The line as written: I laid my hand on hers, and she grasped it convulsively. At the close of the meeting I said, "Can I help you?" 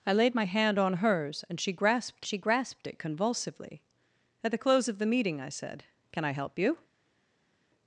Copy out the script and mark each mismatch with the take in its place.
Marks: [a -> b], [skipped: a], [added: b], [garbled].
I laid my hand on hers, and she grasped [added: she grasped] it convulsively. At the close of the meeting I said, "Can I help you?"